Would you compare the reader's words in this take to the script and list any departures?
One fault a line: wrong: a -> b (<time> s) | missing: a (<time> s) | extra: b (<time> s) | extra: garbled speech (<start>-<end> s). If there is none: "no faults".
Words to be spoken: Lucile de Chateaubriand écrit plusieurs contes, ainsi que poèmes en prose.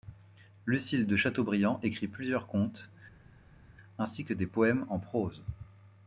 extra: des (4.3 s)